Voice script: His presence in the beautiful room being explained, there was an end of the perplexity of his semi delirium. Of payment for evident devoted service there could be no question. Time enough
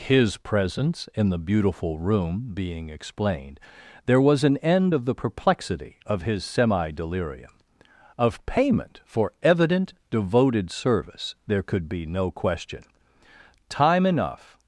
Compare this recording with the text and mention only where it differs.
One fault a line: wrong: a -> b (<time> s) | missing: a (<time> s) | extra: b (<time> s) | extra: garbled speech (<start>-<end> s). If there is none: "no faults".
no faults